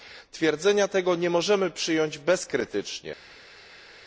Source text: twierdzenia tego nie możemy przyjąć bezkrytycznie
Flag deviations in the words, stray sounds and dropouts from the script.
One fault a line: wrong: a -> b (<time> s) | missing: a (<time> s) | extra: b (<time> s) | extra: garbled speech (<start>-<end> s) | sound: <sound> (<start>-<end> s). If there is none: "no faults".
no faults